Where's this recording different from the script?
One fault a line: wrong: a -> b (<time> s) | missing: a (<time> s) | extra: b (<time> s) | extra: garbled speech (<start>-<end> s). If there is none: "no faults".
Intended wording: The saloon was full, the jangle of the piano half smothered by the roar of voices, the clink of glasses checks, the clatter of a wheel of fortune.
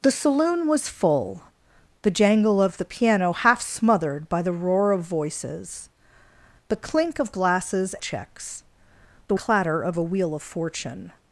no faults